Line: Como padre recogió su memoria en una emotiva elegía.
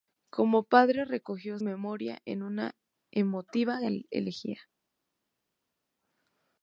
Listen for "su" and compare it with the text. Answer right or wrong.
wrong